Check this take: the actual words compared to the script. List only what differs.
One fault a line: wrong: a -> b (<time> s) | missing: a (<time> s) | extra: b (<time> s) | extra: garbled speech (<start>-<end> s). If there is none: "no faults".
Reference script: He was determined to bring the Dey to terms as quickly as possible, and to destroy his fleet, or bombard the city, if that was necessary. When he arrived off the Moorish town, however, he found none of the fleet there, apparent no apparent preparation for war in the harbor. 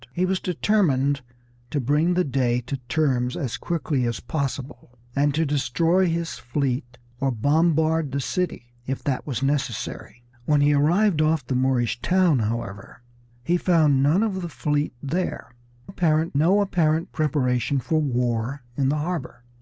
no faults